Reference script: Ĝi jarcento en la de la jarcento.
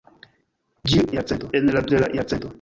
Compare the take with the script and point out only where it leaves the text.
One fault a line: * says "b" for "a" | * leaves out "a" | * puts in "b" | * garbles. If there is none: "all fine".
all fine